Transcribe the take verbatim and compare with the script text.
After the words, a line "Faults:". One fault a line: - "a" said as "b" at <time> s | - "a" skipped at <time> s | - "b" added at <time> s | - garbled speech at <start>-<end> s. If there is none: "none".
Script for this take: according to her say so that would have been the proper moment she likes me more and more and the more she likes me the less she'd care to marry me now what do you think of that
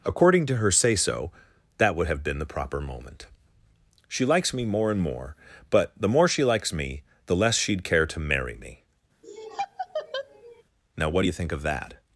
according to her say so that would have been the proper moment she likes me more and more but the more she likes me the less she'd care to marry me now what do you think of that
Faults:
- "and" said as "but" at 5.7 s